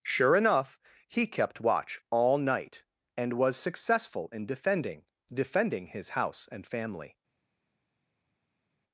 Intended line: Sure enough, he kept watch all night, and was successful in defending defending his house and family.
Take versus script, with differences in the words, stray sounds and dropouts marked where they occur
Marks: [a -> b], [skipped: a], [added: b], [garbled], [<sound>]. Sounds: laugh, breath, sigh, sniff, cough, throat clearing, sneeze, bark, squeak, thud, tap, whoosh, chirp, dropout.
Sure enough, he kept watch all night, and was successful in defending defending his house and family.